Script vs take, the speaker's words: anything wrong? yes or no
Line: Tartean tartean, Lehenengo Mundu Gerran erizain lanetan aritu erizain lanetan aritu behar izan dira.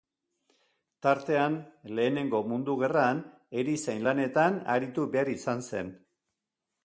yes